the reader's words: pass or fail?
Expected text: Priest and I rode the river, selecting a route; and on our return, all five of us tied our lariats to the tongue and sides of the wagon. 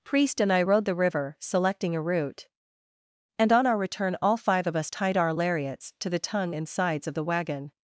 pass